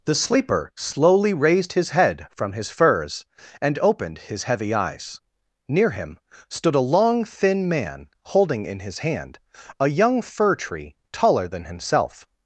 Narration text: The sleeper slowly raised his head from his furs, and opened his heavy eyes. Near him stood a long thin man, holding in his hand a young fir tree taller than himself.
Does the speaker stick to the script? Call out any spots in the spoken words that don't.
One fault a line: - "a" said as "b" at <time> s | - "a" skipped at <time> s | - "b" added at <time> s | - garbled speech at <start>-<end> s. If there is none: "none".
none